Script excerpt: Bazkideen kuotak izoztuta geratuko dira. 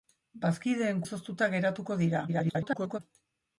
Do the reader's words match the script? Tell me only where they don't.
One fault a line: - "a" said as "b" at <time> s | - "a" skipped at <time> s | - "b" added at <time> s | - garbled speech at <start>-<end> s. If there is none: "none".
- "kuotak" skipped at 1.0 s
- garbled speech at 2.3-3.0 s